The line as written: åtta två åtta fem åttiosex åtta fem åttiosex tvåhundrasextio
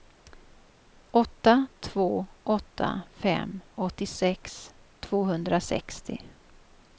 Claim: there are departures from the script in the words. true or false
true